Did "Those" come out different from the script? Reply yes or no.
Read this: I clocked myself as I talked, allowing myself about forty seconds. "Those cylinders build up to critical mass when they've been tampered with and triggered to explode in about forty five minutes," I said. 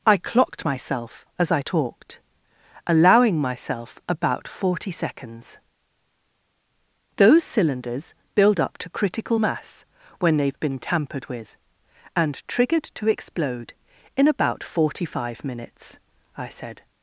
no